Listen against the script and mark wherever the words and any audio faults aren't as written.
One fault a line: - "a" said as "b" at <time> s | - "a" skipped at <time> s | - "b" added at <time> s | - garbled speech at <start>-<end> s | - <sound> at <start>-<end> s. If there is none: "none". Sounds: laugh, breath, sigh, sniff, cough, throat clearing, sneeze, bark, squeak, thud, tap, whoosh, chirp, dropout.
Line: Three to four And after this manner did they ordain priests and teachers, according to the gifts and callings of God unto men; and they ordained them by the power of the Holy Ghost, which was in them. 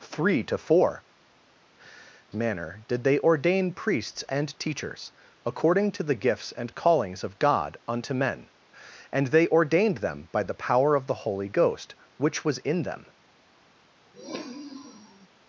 - "And after this" skipped at 1.0 s
- sniff at 14.1-15.3 s